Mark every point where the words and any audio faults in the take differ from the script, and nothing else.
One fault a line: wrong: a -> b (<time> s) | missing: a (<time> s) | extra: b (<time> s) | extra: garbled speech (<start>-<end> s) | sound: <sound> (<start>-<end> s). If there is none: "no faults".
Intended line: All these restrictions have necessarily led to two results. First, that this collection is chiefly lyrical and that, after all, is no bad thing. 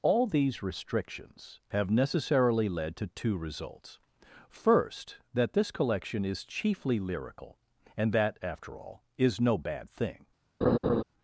sound: laugh (10.6-11.0 s)